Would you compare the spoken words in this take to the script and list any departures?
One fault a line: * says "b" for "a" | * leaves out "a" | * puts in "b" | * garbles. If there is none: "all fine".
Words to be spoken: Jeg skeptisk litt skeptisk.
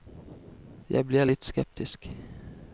* says "blir" for "skeptisk"